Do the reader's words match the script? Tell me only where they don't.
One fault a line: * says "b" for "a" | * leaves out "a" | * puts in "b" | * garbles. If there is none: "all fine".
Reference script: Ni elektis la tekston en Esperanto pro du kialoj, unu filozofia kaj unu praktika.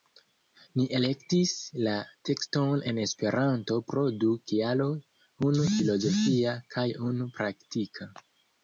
all fine